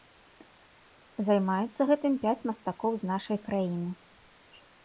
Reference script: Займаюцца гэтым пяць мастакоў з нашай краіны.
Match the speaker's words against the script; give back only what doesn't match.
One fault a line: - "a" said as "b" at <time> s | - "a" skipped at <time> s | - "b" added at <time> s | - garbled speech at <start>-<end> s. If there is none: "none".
none